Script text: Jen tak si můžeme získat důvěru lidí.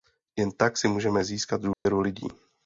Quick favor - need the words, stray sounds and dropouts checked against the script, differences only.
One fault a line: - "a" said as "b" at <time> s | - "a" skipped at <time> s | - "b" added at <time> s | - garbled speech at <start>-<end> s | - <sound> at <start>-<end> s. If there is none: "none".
- dropout at 1.7-1.9 s